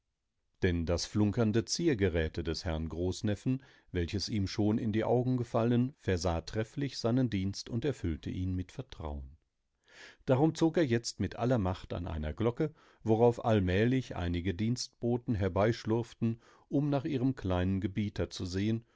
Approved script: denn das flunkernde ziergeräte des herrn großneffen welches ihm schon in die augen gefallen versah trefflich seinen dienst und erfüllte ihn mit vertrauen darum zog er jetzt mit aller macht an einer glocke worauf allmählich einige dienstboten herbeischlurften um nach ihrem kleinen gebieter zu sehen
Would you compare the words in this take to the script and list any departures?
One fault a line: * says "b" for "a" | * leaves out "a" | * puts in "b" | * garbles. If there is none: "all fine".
all fine